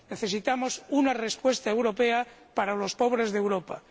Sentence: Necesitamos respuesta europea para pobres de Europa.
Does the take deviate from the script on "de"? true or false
false